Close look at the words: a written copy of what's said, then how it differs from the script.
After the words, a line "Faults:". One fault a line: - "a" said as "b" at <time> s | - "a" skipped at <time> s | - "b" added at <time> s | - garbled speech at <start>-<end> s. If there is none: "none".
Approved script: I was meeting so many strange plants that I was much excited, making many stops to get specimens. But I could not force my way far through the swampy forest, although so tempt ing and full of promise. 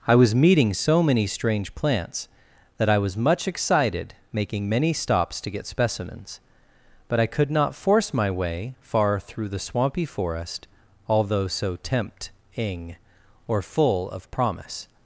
I was meeting so many strange plants that I was much excited, making many stops to get specimens. But I could not force my way far through the swampy forest, although so tempt ing or full of promise.
Faults:
- "and" said as "or" at 13.5 s